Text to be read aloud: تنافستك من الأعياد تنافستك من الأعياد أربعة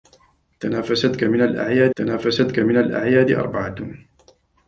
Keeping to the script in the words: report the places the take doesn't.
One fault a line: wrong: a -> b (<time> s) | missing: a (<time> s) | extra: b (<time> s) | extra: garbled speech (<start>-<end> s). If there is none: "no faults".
no faults